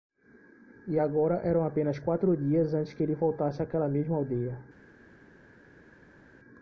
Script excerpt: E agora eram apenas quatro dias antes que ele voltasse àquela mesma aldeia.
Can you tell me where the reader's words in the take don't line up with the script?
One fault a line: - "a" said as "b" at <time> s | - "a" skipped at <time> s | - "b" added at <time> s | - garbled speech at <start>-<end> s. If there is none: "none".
none